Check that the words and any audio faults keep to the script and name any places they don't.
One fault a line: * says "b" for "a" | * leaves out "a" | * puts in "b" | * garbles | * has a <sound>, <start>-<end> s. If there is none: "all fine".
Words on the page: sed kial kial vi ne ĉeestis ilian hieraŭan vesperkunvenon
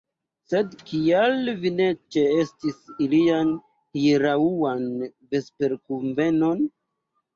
* leaves out "kial"